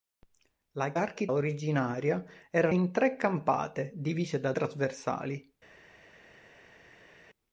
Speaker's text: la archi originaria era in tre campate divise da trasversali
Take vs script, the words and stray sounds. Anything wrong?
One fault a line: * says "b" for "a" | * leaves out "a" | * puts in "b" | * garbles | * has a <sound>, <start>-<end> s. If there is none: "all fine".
all fine